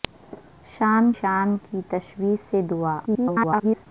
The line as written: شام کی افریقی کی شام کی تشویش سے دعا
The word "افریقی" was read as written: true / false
false